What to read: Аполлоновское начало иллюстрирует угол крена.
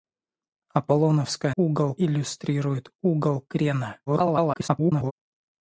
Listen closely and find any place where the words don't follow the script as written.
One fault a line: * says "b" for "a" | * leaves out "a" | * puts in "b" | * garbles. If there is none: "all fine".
* says "угол" for "начало"
* garbles